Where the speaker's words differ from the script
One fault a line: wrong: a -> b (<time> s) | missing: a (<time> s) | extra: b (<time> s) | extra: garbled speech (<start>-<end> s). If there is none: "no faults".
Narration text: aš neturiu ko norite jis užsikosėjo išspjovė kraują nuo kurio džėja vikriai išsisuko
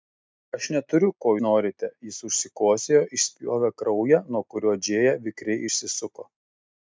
no faults